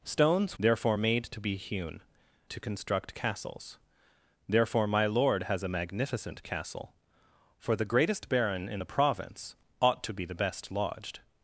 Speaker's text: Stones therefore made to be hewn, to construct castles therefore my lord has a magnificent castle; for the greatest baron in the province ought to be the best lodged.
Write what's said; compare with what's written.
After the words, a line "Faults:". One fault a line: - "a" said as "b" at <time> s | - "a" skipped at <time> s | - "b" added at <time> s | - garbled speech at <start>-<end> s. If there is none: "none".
Stones therefore made to be hewn, to construct castles therefore my lord has a magnificent castle; for the greatest baron in the province ought to be the best lodged.
Faults:
none